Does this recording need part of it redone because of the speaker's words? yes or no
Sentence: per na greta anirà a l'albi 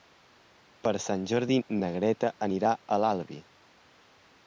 yes